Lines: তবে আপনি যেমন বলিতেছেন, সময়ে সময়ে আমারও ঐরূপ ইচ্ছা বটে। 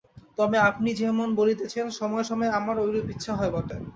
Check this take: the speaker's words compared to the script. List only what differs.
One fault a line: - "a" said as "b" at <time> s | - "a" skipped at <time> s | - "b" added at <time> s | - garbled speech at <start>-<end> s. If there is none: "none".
- "হয়" added at 3.4 s